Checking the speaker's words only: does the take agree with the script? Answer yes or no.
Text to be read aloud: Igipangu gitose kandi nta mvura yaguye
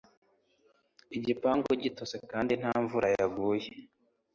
yes